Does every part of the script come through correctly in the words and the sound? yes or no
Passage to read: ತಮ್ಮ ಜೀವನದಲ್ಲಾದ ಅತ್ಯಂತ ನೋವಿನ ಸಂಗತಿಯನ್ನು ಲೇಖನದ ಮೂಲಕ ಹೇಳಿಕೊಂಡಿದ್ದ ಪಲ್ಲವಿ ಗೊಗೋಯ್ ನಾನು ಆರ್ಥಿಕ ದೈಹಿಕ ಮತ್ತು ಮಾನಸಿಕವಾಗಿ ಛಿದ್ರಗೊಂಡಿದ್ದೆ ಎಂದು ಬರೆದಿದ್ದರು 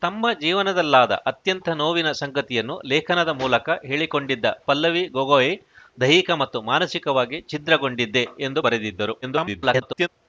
no